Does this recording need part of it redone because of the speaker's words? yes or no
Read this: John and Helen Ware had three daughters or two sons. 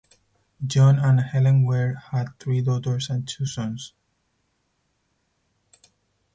yes